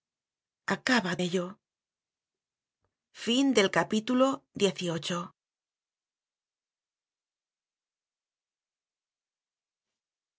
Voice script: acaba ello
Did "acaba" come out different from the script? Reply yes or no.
no